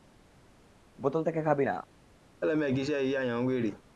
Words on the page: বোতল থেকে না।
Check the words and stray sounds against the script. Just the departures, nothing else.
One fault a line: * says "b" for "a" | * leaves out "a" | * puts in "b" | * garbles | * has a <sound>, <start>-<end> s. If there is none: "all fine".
* puts in "খাবি"
* has a laugh, 2.4-3.8 s